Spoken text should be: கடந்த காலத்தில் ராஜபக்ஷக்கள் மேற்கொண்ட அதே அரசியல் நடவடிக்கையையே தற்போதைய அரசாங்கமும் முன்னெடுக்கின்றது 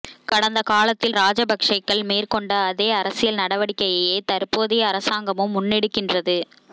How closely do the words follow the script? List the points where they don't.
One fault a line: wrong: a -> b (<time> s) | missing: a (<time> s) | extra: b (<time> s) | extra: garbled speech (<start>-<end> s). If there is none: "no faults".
no faults